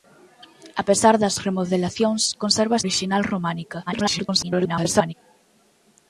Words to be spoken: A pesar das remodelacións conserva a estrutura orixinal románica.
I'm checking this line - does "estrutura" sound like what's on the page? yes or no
no